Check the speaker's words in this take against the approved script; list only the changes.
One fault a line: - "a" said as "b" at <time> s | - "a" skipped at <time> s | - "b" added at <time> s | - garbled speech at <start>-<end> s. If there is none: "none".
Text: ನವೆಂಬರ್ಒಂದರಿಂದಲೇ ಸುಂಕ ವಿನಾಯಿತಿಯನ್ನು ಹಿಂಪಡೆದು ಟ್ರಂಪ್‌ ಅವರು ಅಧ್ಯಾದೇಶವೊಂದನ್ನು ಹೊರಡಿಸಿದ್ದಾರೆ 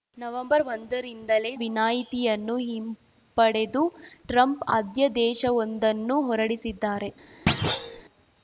- "ಸುಂಕ" skipped at 1.5 s
- "ಅವರು" skipped at 4.6 s